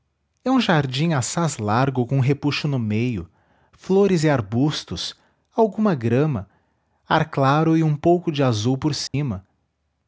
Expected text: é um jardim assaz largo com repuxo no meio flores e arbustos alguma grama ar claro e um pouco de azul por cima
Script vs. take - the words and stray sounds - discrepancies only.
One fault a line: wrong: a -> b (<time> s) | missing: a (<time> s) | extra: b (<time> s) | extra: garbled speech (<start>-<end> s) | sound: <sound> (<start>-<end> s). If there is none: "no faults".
sound: dropout (9.1-9.1 s)